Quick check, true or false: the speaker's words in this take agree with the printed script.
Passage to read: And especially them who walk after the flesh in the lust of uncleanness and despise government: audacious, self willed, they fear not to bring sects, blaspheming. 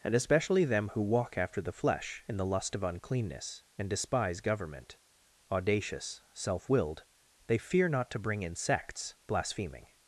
false